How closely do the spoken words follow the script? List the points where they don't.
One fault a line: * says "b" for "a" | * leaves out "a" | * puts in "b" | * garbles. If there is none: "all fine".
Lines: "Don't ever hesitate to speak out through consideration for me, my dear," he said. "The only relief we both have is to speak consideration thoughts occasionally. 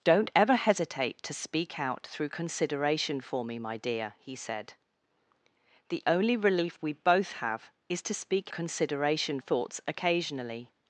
all fine